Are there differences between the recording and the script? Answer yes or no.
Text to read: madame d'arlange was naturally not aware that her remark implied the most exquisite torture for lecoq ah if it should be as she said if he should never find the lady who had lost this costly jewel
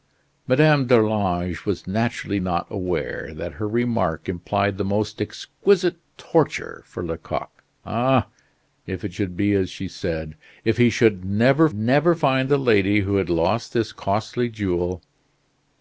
yes